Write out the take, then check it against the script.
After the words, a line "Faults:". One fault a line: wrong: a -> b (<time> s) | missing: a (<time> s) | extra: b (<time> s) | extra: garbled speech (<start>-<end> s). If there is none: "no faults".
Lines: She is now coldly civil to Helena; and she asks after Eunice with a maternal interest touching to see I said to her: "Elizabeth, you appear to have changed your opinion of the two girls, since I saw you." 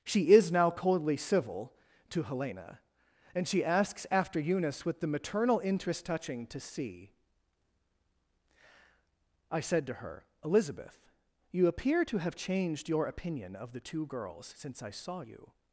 She is now coldly civil to Helena; and she asks after Eunice with the maternal interest touching to see I said to her: "Elizabeth, you appear to have changed your opinion of the two girls, since I saw you."
Faults:
wrong: a -> the (5.0 s)